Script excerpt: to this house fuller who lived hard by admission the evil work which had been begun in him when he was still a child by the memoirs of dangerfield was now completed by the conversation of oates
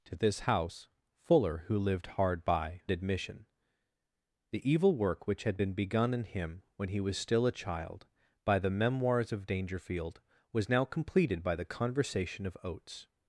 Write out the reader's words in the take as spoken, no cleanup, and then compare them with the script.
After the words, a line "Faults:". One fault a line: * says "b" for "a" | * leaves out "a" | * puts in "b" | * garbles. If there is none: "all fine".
to this house fuller who lived hard by admission the evil work which had been begun in him when he was still a child by the memoirs of dangerfield was now completed by the conversation of oates
Faults:
all fine